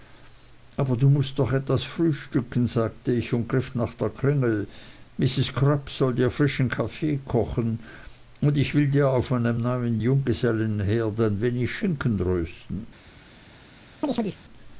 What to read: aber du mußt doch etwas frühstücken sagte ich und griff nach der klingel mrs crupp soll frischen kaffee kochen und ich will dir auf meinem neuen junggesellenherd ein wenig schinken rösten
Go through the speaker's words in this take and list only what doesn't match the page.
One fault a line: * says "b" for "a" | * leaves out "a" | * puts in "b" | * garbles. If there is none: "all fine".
* puts in "dir"